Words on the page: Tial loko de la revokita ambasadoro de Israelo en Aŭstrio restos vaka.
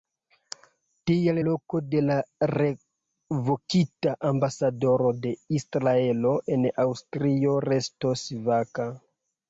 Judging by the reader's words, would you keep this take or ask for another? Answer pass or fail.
pass